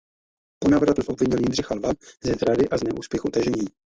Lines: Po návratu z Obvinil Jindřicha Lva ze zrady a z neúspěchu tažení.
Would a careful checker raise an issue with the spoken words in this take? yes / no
no